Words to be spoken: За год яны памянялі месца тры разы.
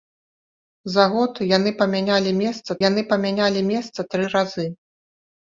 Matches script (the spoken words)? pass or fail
fail